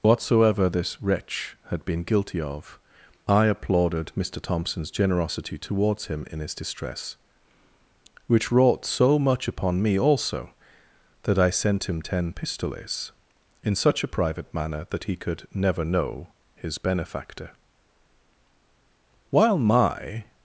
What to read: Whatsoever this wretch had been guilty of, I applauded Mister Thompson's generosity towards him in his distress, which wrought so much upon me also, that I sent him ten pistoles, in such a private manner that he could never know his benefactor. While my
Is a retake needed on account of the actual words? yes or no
no